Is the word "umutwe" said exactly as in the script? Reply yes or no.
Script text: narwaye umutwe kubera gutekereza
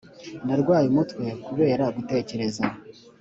yes